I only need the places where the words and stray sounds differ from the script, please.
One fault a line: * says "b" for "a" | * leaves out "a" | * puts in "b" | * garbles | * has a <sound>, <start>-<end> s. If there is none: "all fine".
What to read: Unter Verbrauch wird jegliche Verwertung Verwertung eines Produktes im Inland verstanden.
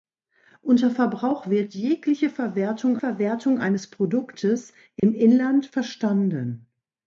* has a dropout, 5.0-5.0 s